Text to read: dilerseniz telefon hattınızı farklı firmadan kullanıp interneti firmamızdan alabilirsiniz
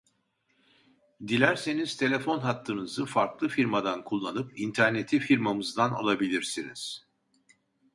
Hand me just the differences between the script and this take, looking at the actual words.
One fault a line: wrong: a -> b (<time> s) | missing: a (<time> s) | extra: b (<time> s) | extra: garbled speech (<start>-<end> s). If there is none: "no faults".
no faults